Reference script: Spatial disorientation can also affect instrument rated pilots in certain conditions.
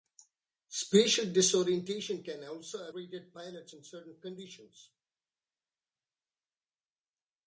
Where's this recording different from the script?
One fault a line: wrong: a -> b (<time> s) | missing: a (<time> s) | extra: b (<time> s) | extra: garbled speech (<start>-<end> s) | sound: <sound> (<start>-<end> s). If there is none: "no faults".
missing: affect instrument (2.9 s)